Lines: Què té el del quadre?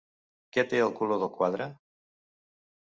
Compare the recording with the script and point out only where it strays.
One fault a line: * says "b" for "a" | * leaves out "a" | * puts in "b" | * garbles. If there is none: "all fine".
* puts in "color"